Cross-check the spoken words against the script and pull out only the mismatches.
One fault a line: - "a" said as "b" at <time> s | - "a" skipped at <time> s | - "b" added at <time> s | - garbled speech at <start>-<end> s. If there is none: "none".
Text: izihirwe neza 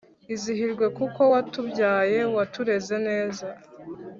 - "kuko watubyaye watureze" added at 1.0 s